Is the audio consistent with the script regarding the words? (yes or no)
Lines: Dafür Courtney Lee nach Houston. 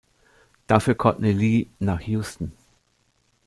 yes